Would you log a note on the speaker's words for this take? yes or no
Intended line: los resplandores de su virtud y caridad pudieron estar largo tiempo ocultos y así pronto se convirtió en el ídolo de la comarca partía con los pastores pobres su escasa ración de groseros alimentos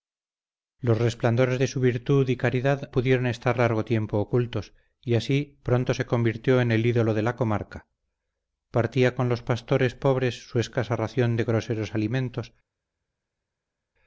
no